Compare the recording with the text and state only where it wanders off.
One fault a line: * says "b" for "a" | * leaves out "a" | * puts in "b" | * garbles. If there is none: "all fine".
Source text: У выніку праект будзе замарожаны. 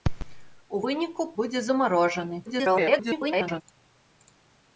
* leaves out "праект"
* garbles